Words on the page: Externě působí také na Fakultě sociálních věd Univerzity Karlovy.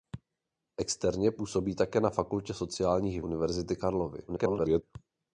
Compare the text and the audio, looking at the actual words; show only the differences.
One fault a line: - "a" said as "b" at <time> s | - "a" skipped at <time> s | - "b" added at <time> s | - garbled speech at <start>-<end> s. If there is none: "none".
- "věd" skipped at 3.2 s
- garbled speech at 4.3-4.8 s